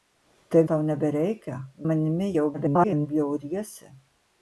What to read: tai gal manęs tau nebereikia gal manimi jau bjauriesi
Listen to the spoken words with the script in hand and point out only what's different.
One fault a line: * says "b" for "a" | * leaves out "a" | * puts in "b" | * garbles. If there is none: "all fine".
* leaves out "gal manęs"
* leaves out "gal"
* garbles